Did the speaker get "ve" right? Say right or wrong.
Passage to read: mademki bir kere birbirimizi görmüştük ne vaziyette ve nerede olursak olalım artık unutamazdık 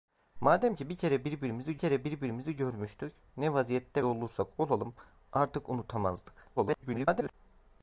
wrong